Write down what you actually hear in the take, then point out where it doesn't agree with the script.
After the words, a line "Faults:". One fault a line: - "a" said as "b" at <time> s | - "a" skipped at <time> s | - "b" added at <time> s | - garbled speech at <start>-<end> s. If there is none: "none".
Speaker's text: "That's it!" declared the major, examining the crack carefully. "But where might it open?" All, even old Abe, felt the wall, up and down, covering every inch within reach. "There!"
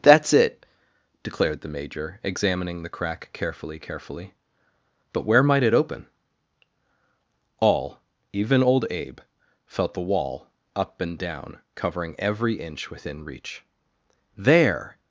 "That's it!" declared the major, examining the crack carefully carefully. "But where might it open?" All, even old Abe, felt the wall, up and down, covering every inch within reach. "There!"
Faults:
- "carefully" added at 3.8 s